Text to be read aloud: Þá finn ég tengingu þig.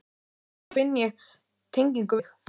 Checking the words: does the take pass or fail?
pass